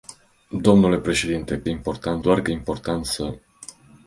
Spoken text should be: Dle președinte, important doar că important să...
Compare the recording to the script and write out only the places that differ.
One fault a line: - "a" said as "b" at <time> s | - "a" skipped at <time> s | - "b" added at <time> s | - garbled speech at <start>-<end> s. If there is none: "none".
none